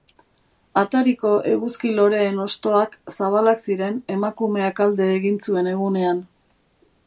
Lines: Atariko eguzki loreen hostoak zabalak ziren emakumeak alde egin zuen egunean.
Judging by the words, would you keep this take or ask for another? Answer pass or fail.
pass